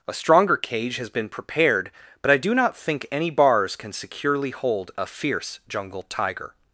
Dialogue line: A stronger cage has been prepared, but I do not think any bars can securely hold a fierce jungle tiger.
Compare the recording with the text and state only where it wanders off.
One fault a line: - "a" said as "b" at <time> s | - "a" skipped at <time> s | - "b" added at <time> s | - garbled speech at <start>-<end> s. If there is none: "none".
none